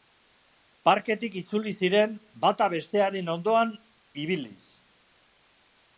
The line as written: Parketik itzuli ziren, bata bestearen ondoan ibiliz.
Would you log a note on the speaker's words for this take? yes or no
no